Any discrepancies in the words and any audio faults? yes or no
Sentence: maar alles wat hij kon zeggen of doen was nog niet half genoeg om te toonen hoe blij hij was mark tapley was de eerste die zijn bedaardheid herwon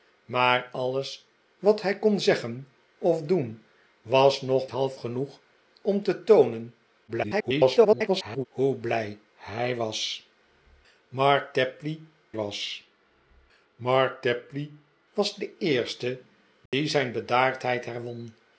yes